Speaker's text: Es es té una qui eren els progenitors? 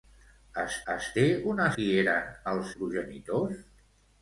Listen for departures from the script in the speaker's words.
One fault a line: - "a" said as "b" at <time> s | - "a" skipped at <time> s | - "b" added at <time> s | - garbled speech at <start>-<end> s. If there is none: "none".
none